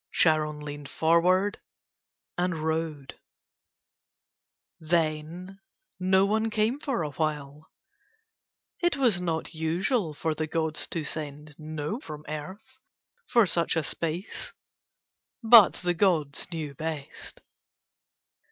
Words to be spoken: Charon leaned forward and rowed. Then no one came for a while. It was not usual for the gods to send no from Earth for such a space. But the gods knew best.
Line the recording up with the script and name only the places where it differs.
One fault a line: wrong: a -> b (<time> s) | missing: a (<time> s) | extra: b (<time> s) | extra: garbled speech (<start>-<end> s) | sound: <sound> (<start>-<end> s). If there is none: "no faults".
no faults